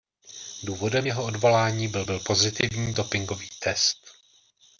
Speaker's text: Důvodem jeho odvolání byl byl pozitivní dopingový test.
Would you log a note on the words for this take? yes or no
no